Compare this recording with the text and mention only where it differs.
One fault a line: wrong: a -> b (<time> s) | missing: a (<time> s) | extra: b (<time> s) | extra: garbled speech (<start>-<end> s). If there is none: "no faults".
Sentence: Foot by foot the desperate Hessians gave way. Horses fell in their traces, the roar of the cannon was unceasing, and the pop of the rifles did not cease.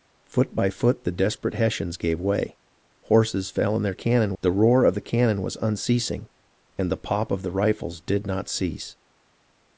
wrong: traces -> cannon (3.9 s)